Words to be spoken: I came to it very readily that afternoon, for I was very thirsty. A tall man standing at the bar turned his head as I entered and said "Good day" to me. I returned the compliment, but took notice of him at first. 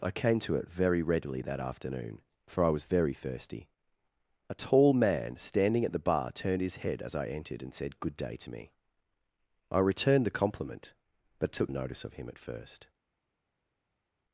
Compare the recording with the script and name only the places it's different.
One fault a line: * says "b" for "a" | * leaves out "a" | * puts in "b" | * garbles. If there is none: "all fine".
all fine